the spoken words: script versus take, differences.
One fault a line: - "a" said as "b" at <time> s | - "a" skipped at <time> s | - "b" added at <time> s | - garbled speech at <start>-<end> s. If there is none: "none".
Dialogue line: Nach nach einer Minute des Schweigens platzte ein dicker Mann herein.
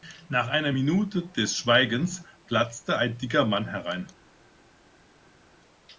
- "nach" skipped at 0.5 s